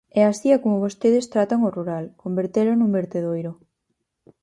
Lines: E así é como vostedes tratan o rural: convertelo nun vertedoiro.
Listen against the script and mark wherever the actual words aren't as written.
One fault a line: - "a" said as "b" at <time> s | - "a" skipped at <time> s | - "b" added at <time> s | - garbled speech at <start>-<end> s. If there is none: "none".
none